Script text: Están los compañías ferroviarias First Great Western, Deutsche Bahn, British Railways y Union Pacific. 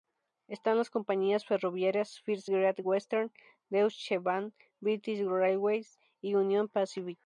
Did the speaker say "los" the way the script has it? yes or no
no